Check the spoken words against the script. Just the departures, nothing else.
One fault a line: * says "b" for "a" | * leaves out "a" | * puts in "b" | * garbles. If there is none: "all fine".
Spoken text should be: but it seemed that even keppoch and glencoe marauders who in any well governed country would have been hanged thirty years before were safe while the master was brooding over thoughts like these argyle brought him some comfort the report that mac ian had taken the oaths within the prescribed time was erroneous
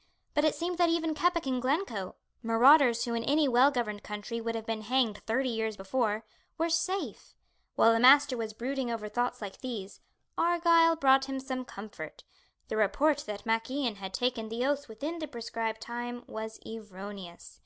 all fine